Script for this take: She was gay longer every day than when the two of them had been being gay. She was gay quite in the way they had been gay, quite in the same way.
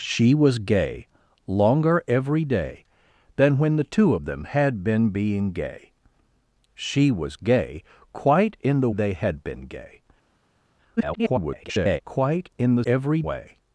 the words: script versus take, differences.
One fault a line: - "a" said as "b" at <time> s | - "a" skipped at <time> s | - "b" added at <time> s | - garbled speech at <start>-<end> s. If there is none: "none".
- "way" skipped at 8.9 s
- garbled speech at 11.0-12.0 s
- "same" said as "every" at 12.8 s